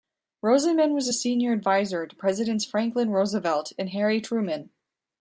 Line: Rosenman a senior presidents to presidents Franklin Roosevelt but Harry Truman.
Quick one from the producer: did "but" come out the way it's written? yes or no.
no